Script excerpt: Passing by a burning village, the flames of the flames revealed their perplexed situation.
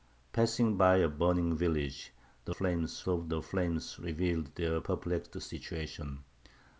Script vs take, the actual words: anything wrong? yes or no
no